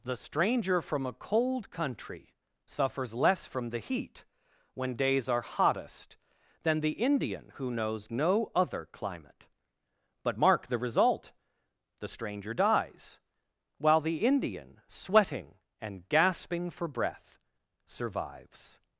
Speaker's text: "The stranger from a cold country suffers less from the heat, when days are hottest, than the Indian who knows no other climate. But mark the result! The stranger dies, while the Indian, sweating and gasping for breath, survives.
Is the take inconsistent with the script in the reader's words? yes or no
no